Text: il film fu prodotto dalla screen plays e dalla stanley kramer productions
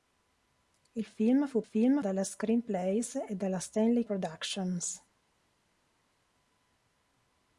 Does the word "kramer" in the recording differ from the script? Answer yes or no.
yes